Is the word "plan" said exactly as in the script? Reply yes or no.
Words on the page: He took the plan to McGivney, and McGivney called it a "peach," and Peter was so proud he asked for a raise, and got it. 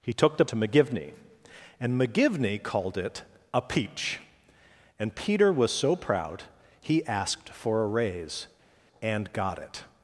no